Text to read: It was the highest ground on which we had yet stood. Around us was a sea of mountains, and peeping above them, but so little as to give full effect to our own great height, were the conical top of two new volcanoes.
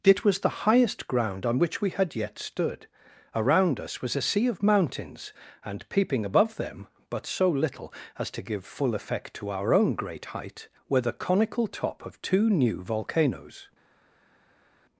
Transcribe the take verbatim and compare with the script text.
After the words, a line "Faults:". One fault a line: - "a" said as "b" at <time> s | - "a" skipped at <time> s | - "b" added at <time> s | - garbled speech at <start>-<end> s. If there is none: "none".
It was the highest ground on which we had yet stood. Around us was a sea of mountains, and peeping above them, but so little as to give full effect to our own great height, were the conical top of two new volcanoes.
Faults:
none